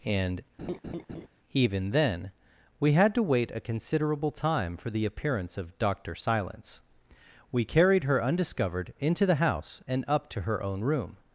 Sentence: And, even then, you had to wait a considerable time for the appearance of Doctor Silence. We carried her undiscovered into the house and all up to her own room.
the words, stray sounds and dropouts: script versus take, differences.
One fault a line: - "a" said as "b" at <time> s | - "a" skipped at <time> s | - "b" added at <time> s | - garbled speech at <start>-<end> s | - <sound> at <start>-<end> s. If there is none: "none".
- laugh at 0.6-1.3 s
- "you" said as "we" at 2.8 s
- "all" skipped at 10.0 s